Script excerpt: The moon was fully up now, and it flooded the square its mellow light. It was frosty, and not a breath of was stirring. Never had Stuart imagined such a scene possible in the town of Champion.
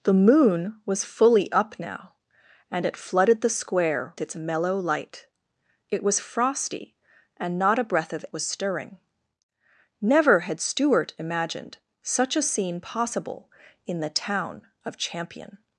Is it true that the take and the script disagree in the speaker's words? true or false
false